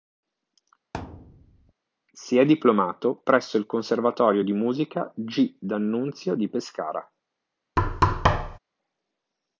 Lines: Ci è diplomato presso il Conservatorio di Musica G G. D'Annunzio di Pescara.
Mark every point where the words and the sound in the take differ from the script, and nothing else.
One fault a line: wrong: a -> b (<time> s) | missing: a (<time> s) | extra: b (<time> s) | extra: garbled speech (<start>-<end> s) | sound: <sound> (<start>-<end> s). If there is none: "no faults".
sound: thud (0.9-1.7 s)
wrong: Ci -> Si (2.1 s)
missing: G (5.6 s)
sound: thud (7.8-8.6 s)